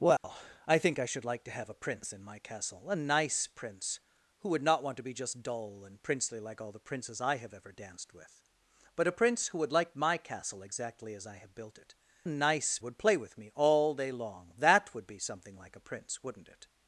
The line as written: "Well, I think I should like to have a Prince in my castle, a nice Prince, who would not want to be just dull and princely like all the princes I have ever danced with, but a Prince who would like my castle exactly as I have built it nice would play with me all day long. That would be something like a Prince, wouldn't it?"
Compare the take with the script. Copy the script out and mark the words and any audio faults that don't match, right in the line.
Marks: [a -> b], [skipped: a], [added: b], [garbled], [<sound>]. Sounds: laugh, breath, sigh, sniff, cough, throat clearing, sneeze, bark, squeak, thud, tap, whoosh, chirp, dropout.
"Well, [dropout] I think I should like to have a Prince in my castle, a nice Prince, who would not want to be just dull and princely like all the princes I have ever danced with, but a Prince who would like my castle exactly as I have built it nice would play with me all day long. That would be something like a Prince, wouldn't it?"